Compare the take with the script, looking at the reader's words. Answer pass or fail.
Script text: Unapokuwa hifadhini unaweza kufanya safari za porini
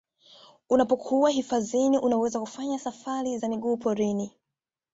fail